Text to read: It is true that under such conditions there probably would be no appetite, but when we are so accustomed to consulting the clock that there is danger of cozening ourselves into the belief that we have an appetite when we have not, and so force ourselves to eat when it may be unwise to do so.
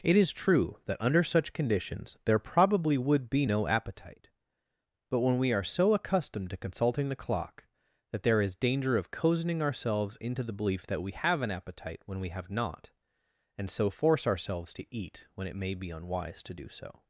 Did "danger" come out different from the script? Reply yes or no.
no